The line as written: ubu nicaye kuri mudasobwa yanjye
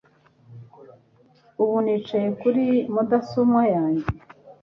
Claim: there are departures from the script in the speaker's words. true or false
false